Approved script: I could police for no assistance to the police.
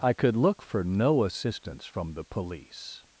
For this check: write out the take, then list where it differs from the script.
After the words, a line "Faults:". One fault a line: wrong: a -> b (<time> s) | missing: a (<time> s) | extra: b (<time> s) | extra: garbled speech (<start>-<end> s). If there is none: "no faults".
I could look for no assistance from the police.
Faults:
wrong: police -> look (0.3 s)
wrong: to -> from (1.9 s)